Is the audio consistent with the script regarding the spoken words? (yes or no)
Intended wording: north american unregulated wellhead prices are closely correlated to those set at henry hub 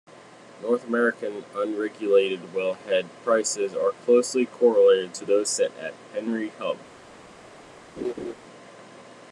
yes